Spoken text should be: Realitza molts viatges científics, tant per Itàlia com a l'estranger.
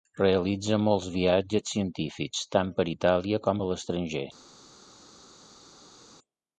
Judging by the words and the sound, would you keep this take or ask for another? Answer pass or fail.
pass